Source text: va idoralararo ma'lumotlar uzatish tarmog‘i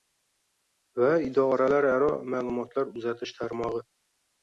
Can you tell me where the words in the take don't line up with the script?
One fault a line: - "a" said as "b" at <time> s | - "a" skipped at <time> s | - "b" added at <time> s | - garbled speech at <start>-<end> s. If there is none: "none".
none